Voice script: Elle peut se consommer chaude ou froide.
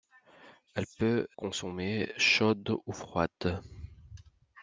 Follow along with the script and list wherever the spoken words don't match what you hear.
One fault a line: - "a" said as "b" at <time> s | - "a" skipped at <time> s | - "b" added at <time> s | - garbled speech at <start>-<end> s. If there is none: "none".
- "se" skipped at 1.3 s